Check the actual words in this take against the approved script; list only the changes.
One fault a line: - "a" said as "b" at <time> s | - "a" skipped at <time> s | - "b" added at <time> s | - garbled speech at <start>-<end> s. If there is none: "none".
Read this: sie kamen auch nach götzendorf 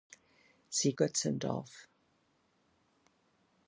- "kamen auch nach" skipped at 0.9 s